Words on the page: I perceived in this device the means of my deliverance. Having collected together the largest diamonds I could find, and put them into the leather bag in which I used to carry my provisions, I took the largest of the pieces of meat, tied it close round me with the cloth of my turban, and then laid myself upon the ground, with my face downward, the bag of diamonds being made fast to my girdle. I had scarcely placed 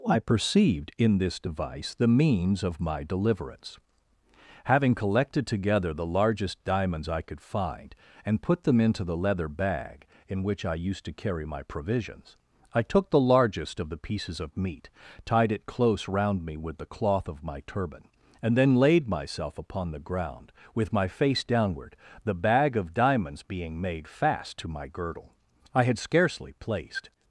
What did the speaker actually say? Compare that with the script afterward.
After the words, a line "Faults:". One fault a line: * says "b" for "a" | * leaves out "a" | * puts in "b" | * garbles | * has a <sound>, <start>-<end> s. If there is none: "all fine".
I perceived in this device the means of my deliverance. Having collected together the largest diamonds I could find, and put them into the leather bag in which I used to carry my provisions, I took the largest of the pieces of meat, tied it close round me with the cloth of my turban, and then laid myself upon the ground, with my face downward, the bag of diamonds being made fast to my girdle. I had scarcely placed
Faults:
all fine